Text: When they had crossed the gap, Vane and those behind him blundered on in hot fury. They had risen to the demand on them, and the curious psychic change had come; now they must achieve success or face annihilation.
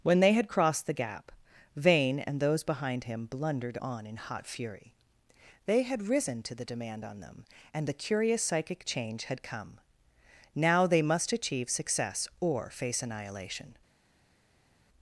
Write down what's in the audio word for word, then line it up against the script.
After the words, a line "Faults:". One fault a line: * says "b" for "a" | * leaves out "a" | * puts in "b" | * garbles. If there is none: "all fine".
When they had crossed the gap, Vane and those behind him blundered on in hot fury. They had risen to the demand on them, and the curious psychic change had come; now they must achieve success or face annihilation.
Faults:
all fine